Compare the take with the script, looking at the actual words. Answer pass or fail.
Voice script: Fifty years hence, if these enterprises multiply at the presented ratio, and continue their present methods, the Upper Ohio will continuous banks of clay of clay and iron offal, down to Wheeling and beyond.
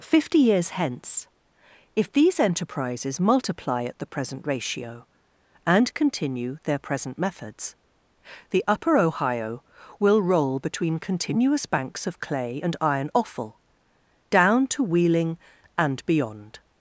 fail